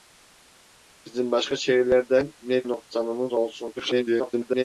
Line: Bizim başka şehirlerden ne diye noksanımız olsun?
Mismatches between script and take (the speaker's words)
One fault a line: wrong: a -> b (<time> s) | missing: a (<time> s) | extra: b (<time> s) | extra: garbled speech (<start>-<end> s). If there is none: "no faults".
missing: diye (2.6 s)
extra: garbled speech (3.8-4.6 s)